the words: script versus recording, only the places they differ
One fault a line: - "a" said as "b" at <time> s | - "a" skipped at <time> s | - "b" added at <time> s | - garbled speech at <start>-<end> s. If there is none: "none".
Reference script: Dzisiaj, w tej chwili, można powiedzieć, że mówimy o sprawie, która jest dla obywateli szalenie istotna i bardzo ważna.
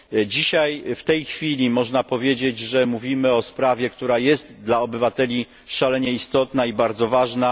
none